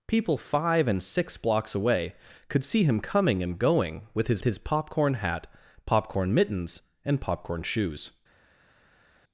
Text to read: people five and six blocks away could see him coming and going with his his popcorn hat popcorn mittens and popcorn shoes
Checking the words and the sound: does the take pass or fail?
pass